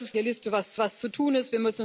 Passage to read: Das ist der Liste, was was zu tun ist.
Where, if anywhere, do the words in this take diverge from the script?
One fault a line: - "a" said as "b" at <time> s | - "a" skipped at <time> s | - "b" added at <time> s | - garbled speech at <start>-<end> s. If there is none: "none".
none